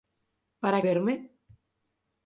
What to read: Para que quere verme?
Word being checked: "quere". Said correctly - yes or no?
no